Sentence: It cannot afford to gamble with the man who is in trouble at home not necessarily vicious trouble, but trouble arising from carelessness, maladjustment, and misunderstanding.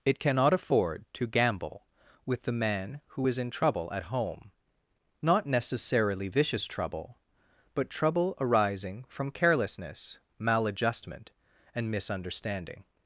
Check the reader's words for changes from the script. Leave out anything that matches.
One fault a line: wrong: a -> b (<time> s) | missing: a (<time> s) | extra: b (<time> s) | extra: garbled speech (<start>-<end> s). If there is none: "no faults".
no faults